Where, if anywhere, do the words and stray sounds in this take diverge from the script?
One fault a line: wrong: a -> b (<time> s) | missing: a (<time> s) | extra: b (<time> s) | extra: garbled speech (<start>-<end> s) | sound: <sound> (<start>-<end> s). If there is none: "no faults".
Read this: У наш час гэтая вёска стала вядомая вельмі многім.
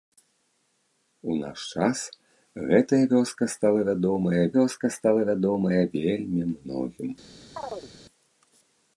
extra: вёска стала вядомая (4.6 s)
sound: chirp (7.6-7.9 s)